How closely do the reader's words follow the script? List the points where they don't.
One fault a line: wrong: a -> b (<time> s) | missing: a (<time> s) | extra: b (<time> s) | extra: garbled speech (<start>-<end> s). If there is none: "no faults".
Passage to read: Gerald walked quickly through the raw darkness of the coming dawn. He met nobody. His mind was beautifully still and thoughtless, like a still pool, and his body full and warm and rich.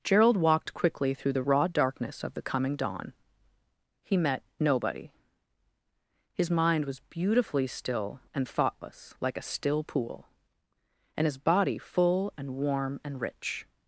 no faults